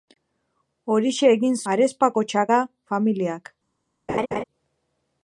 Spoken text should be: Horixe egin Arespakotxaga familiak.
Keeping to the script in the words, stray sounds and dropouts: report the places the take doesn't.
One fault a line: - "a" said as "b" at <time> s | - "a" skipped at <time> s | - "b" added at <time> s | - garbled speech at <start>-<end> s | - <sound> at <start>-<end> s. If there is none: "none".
- laugh at 4.1-4.4 s